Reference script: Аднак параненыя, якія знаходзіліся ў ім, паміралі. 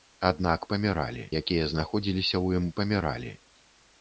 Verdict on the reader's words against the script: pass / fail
fail